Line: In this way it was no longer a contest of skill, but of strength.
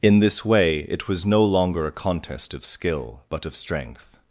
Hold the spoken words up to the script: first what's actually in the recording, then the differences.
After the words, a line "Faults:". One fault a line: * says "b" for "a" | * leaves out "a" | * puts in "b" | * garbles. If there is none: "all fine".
In this way it was no longer a contest of skill, but of strength.
Faults:
all fine